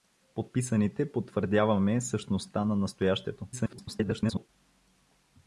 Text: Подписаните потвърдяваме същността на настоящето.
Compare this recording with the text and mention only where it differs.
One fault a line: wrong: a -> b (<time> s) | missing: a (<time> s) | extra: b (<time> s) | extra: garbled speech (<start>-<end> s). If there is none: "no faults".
extra: garbled speech (3.5-4.5 s)